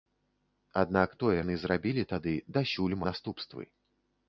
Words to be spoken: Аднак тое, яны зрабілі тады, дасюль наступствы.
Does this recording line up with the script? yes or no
yes